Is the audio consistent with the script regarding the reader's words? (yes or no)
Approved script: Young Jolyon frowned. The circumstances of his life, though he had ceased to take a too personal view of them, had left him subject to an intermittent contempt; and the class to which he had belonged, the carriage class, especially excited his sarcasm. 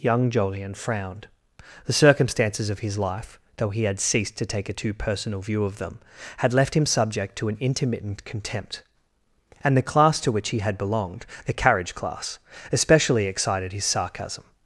yes